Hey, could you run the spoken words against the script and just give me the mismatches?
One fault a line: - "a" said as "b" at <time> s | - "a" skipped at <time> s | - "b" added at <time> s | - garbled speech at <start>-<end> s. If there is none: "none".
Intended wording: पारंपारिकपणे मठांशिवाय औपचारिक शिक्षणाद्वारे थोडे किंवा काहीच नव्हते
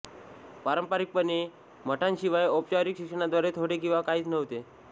none